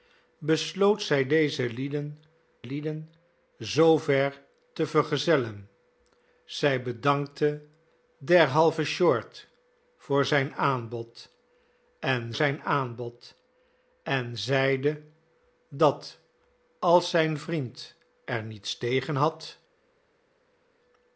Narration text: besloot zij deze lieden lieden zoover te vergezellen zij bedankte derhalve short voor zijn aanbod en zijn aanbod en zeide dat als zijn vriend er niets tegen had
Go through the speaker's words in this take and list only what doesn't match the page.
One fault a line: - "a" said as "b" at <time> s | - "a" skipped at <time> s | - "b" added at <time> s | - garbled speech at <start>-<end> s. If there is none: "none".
none